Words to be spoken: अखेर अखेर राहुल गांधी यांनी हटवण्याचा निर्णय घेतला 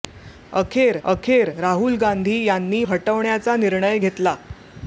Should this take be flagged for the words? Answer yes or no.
no